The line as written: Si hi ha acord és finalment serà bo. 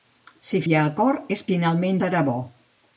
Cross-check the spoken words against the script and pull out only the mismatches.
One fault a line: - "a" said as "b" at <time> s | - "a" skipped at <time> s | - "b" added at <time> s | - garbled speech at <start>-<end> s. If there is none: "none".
none